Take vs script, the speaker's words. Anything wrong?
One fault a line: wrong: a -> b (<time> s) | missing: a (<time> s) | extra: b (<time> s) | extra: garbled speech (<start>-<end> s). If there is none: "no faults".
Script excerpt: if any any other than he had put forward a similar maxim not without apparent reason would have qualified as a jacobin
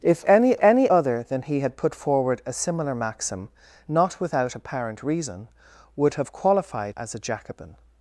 no faults